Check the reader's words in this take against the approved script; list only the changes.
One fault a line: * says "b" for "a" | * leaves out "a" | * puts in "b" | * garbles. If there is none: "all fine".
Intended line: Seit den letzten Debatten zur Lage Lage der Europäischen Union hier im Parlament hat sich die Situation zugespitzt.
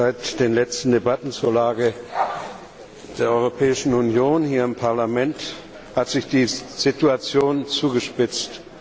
* leaves out "Lage"